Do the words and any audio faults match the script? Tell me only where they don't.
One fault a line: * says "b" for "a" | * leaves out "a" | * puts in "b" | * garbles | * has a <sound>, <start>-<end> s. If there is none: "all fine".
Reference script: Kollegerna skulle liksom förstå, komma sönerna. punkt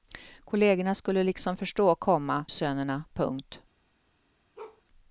* has a bark, 4.6-4.8 s